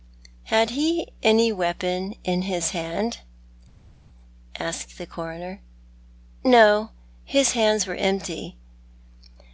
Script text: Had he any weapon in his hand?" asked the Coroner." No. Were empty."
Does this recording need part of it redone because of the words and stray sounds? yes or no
yes